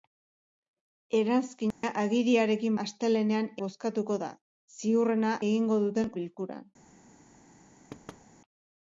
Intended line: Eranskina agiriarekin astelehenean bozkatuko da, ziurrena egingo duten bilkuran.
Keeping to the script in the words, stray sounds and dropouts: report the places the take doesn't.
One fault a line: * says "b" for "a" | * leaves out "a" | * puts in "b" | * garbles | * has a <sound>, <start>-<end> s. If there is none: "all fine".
* has a dropout, 1.7-1.8 s
* has a thud, 7.9-8.3 s